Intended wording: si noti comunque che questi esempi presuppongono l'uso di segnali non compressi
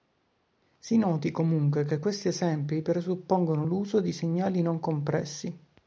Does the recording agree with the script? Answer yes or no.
yes